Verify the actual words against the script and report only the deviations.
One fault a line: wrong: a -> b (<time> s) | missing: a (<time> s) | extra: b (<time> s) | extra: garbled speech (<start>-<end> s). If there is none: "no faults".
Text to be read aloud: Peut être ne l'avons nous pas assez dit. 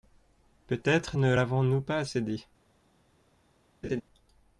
no faults